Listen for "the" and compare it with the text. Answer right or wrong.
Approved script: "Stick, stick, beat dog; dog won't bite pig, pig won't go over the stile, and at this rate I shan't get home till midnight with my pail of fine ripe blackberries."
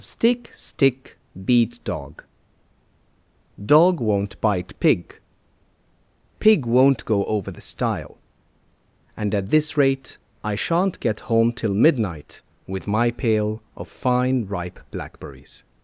right